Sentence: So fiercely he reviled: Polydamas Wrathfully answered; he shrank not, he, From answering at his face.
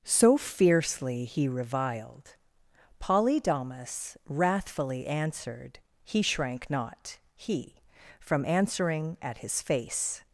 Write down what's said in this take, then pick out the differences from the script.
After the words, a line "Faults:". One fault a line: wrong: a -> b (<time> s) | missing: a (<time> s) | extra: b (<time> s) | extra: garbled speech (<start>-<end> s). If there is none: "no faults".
So fiercely he reviled: Polydamas Wrathfully answered; he shrank not, he, From answering at his face.
Faults:
no faults